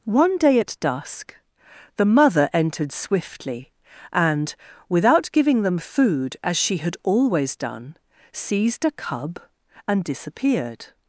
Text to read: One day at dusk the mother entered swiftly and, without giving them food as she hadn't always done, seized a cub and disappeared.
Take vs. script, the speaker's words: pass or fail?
fail